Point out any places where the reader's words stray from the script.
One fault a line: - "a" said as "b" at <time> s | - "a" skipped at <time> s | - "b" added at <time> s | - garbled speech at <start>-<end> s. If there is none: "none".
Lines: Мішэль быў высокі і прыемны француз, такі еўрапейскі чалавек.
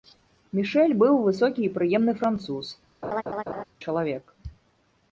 - "такі еўрапейскі" skipped at 2.7 s